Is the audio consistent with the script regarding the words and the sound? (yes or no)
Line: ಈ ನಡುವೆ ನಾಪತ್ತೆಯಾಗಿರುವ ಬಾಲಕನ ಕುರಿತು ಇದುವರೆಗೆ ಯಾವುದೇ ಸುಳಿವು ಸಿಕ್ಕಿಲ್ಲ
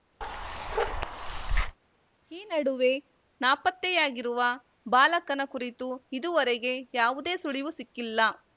no